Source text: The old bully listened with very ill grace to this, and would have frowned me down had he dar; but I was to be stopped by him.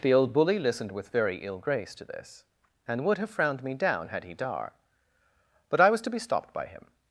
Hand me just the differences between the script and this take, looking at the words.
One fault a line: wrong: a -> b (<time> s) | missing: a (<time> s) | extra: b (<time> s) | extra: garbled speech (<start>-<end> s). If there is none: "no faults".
no faults